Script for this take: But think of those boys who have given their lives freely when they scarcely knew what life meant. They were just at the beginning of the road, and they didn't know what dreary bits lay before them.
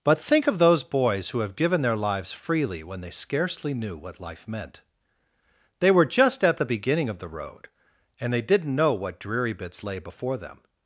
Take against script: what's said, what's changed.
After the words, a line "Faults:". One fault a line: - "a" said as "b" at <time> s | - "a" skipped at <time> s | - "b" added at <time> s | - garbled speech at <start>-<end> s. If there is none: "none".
But think of those boys who have given their lives freely when they scarcely knew what life meant. They were just at the beginning of the road, and they didn't know what dreary bits lay before them.
Faults:
none